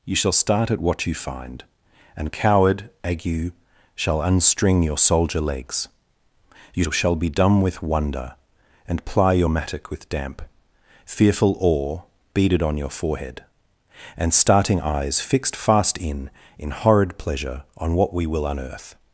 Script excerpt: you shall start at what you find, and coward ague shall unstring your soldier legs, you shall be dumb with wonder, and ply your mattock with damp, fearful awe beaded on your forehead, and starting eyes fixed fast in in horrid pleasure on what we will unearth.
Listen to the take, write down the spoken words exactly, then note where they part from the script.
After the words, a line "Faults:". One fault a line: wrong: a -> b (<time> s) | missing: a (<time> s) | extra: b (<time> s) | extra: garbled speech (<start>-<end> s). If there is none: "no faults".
you shall start at what you find, and coward ague shall unstring your soldier legs, you shall be dumb with wonder, and ply your mattock with damp, fearful awe beaded on your forehead, and starting eyes fixed fast in in horrid pleasure on what we will unearth.
Faults:
no faults